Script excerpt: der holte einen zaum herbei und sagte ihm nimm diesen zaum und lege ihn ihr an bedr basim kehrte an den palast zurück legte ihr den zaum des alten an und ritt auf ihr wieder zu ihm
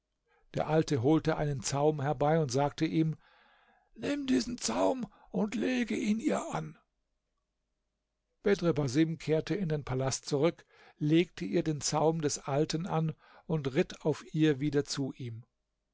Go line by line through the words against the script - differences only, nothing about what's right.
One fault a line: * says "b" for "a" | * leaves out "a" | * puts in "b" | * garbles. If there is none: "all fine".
* puts in "alte"
* says "in" for "an"